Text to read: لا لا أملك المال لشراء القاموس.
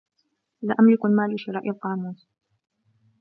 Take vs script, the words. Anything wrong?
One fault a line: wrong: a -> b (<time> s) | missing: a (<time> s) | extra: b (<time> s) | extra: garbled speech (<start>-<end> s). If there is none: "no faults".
missing: لا (0.8 s)